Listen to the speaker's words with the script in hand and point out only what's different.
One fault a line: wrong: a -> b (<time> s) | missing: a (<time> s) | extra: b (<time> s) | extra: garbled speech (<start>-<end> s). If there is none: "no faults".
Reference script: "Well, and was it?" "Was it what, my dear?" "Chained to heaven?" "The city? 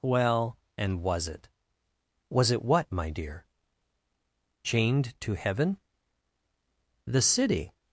no faults